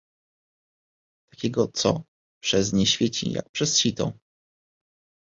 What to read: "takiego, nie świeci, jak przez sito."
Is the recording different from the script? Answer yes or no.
yes